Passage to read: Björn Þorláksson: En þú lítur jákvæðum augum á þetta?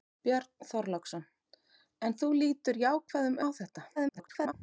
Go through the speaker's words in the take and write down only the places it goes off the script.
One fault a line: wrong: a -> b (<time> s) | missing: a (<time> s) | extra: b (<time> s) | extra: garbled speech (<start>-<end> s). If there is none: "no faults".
missing: augum (3.4 s)
extra: garbled speech (4.0-4.5 s)